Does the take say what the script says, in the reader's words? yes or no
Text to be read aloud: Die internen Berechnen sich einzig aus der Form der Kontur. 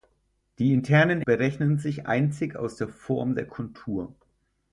yes